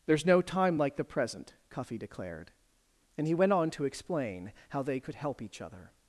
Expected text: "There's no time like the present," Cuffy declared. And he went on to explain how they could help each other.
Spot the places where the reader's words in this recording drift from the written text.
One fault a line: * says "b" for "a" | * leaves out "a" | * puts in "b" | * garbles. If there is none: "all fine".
all fine